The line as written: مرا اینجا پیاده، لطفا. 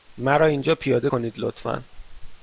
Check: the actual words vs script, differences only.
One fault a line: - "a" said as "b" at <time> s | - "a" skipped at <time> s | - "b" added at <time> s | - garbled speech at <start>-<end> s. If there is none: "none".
- "کنید" added at 1.0 s